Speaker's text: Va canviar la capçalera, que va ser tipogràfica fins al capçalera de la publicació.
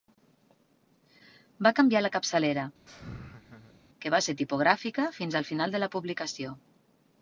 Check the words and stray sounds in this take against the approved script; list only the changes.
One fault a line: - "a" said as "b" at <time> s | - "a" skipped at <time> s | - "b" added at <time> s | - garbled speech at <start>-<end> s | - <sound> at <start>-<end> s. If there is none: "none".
- laugh at 2.9-3.8 s
- "capçalera" said as "final" at 5.5 s